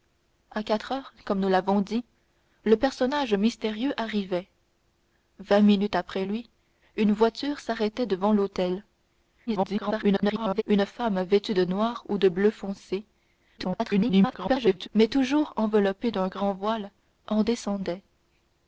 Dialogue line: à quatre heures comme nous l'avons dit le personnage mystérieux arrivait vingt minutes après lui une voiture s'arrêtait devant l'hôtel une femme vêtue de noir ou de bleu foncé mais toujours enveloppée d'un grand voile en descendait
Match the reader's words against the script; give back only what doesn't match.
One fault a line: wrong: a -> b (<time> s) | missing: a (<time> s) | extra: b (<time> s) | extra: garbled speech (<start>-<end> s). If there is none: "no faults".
extra: garbled speech (9.5-10.6 s)
extra: garbled speech (13.6-14.9 s)